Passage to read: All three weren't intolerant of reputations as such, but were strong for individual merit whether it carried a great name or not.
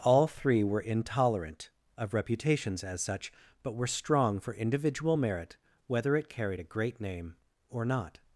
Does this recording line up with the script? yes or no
no